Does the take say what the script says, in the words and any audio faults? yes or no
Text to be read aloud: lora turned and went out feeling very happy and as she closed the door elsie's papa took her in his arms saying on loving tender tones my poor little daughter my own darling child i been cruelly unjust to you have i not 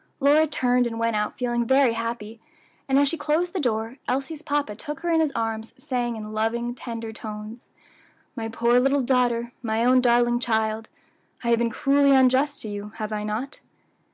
no